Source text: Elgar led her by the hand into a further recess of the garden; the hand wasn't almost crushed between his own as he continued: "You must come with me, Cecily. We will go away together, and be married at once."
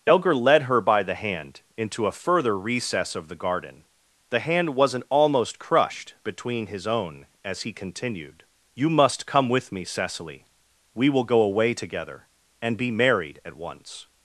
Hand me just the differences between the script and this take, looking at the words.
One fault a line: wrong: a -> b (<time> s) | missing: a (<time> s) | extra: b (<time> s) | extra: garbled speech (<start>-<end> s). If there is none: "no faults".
no faults